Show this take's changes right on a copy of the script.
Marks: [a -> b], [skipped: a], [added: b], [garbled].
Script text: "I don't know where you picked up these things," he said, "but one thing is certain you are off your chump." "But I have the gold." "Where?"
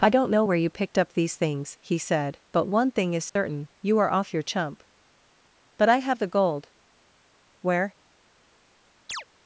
"I don't know where you picked up these things," he said, "but one thing is certain you are off your chump." "But I have the gold." "Where?"